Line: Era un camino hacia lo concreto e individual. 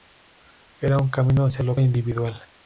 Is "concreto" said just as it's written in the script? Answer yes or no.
no